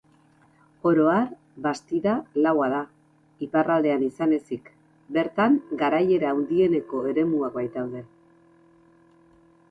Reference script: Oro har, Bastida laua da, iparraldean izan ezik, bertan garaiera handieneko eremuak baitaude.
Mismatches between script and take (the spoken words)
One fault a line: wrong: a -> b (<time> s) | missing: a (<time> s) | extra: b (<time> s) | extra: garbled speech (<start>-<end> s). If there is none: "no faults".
no faults